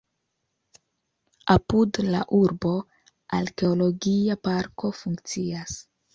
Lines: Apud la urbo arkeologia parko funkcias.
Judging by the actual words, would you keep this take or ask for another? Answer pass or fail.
pass